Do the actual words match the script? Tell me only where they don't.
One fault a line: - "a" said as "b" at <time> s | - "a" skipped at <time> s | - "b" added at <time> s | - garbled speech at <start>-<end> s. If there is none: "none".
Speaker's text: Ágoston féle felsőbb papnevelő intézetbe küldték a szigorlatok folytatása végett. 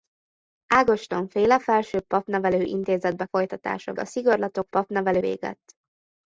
- "küldték" said as "folytatása" at 3.2 s
- "folytatása" said as "papnevelő" at 4.7 s